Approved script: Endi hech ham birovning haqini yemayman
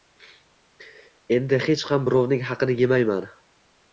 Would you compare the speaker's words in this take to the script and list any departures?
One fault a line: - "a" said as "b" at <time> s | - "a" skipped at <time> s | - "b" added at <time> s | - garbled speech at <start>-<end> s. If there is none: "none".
none